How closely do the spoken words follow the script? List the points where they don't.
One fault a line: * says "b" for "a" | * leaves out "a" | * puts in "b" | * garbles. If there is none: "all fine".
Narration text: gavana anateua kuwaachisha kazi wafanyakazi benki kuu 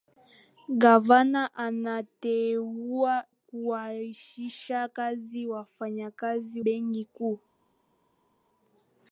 all fine